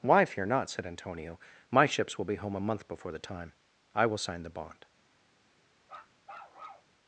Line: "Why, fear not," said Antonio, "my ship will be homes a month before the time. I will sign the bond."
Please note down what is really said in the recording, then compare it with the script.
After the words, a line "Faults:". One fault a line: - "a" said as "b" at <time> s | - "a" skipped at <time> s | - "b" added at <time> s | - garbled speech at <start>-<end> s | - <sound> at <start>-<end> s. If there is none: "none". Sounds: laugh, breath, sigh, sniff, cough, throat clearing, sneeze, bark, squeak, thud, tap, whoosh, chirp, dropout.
"Why, fear not," said Antonio, "my ships will be home a month before the time. I will sign the bond."
Faults:
- "ship" said as "ships" at 1.9 s
- "homes" said as "home" at 2.3 s
- bark at 5.8-6.9 s